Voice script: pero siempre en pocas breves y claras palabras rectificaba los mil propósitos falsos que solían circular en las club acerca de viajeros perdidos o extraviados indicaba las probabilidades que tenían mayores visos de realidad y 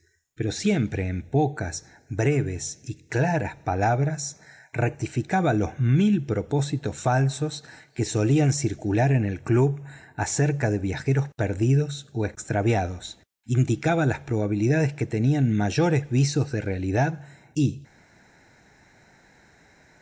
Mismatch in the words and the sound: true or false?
true